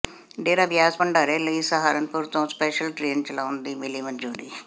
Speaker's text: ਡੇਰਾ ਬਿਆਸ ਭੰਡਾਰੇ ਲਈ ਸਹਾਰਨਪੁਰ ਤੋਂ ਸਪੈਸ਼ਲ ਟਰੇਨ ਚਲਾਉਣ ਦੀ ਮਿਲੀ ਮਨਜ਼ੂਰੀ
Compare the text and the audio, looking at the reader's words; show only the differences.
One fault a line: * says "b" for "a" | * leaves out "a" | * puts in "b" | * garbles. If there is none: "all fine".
all fine